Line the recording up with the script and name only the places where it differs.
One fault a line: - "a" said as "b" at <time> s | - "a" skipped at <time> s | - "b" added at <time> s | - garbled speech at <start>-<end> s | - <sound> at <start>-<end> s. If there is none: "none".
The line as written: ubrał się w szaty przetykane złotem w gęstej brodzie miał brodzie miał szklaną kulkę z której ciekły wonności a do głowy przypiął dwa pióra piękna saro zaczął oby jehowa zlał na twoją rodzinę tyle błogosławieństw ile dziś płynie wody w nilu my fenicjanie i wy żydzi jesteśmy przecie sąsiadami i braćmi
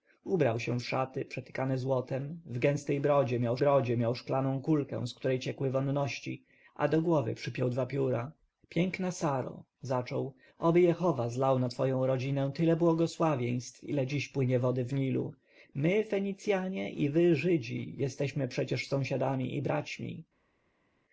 none